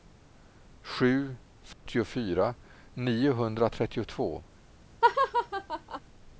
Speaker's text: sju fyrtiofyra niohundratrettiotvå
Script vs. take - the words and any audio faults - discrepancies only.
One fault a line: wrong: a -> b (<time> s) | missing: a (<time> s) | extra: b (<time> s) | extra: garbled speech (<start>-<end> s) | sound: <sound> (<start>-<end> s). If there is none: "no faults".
sound: dropout (1.7-1.9 s)
sound: laugh (5.0-6.0 s)